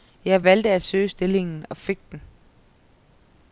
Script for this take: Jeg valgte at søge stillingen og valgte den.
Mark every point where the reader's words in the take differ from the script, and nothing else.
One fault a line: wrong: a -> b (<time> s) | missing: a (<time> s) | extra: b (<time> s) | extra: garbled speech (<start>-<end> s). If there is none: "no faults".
wrong: valgte -> fik (1.8 s)